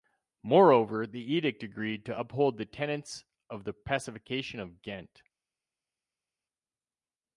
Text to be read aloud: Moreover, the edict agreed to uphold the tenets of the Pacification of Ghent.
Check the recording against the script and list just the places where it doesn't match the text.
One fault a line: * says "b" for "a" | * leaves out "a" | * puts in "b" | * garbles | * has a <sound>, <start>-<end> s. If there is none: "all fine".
all fine